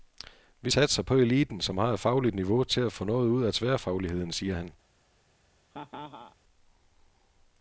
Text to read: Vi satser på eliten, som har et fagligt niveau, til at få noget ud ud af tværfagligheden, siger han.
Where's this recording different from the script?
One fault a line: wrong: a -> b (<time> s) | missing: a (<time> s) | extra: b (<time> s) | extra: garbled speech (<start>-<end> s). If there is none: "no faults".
missing: ud (3.4 s)